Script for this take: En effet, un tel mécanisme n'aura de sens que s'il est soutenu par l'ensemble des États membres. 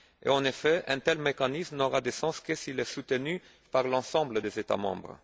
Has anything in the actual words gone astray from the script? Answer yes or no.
no